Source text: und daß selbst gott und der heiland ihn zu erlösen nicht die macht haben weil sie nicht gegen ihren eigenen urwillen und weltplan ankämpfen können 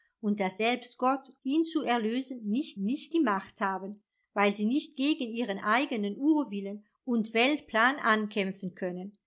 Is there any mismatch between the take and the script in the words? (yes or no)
yes